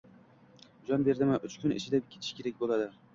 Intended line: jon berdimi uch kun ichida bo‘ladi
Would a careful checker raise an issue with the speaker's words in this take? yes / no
yes